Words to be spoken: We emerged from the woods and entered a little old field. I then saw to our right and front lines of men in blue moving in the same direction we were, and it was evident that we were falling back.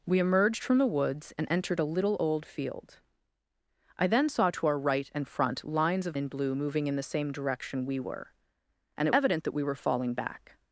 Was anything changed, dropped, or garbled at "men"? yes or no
yes